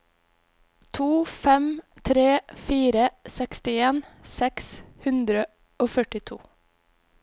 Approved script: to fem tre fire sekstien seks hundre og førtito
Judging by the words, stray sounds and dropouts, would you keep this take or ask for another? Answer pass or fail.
pass